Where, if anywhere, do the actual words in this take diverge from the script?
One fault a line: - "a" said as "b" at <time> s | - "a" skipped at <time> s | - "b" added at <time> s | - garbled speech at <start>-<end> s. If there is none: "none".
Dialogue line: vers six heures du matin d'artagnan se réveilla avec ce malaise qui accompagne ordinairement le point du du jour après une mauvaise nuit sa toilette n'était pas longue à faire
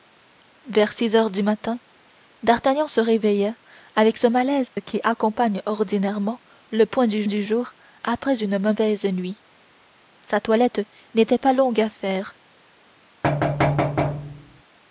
none